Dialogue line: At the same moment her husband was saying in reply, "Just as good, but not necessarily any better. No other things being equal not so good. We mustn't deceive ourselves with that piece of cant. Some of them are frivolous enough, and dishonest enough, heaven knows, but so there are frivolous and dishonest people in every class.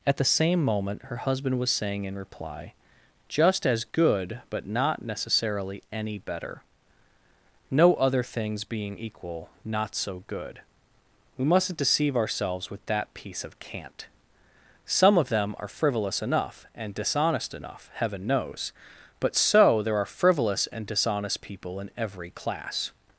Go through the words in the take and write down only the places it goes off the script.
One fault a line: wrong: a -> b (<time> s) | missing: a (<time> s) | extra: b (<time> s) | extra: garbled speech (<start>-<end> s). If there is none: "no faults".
no faults